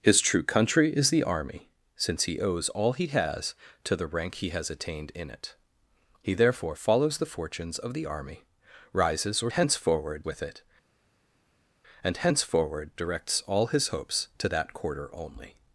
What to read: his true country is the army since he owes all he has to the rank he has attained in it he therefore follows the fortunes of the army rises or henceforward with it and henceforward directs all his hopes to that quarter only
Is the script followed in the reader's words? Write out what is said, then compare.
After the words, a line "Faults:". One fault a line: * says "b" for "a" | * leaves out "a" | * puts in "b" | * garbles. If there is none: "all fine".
his true country is the army since he owes all he has to the rank he has attained in it he therefore follows the fortunes of the army rises or henceforward with it and henceforward directs all his hopes to that quarter only
Faults:
all fine